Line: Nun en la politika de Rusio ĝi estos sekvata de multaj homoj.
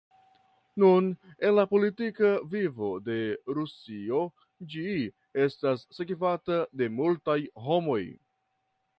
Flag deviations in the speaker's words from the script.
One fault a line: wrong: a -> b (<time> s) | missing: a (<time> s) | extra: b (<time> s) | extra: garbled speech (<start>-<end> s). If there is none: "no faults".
extra: vivo (2.5 s)
wrong: estos -> estas (5.4 s)